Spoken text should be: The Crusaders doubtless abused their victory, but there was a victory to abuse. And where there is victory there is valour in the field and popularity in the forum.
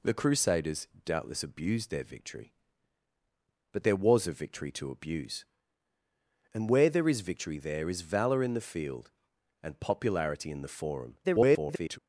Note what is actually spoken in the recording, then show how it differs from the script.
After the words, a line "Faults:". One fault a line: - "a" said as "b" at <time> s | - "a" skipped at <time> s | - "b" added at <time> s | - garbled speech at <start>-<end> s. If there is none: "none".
The Crusaders doubtless abused their victory, but there was a victory to abuse. And where there is victory there is valour in the field and popularity in the forum. [garbled]
Faults:
- garbled speech at 11.2-12.0 s